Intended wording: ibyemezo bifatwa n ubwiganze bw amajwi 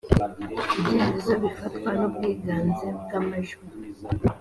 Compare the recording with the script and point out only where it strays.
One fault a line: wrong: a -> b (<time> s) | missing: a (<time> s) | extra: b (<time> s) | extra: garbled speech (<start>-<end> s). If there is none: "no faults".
no faults